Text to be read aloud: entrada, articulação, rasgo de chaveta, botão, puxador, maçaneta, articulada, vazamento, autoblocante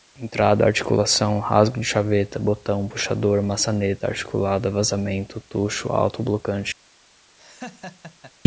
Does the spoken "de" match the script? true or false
true